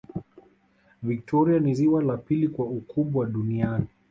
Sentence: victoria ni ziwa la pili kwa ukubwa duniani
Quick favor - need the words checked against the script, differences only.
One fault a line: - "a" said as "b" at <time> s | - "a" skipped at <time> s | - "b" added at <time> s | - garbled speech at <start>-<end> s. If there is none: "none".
none